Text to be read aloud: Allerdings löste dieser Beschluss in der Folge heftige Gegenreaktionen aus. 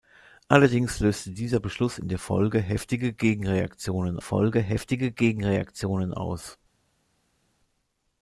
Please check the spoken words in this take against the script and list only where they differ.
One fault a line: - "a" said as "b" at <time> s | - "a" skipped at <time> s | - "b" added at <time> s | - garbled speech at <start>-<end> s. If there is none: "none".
- "Folge heftige Gegenreaktionen" added at 4.2 s